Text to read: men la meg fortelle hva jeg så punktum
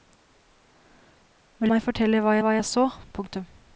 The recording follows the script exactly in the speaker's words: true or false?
false